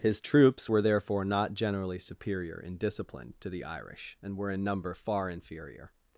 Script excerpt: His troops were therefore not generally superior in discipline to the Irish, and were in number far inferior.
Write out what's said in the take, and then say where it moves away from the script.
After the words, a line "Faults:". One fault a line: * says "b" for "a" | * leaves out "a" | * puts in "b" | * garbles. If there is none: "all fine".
His troops were therefore not generally superior in discipline to the Irish, and were in number far inferior.
Faults:
all fine